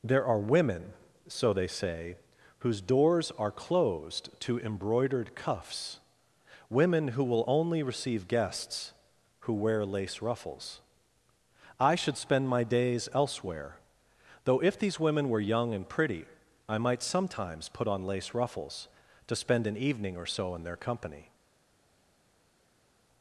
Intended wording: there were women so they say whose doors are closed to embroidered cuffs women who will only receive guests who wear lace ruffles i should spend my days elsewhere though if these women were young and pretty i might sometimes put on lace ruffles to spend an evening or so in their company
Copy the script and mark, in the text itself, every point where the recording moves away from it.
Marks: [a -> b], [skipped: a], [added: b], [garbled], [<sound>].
there [were -> are] women so they say whose doors are closed to embroidered cuffs women who will only receive guests who wear lace ruffles i should spend my days elsewhere though if these women were young and pretty i might sometimes put on lace ruffles to spend an evening or so in their company